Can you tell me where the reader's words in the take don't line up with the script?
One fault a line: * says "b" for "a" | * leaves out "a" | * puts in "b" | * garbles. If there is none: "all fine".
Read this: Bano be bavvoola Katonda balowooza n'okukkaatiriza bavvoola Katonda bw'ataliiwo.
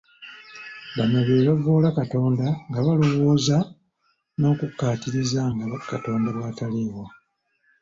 * puts in "nga"
* says "nga" for "bavvoola"